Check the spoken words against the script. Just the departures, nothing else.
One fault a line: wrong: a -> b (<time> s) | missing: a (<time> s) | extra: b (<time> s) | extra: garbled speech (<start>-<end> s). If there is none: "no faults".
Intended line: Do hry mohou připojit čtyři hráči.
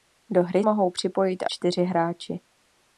no faults